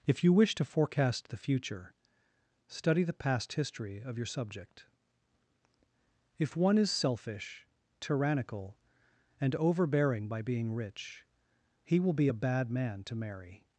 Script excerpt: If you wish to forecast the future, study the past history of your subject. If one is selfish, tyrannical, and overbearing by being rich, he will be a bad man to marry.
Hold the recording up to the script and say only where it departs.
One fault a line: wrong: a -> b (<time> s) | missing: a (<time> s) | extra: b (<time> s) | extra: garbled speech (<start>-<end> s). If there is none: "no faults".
no faults